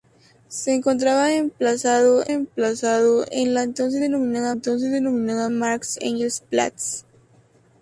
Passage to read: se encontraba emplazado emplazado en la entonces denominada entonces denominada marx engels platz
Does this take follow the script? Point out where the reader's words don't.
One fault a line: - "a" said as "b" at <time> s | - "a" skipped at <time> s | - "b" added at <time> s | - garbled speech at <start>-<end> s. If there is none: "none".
none